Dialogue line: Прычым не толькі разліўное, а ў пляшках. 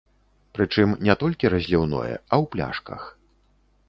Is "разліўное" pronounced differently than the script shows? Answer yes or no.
no